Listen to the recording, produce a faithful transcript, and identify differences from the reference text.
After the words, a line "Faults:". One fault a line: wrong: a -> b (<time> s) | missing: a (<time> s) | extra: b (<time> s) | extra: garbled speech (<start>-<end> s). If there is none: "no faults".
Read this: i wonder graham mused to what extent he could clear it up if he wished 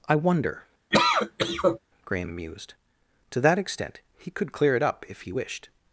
i wonder graham mused to that extent he could clear it up if he wished
Faults:
wrong: what -> that (3.4 s)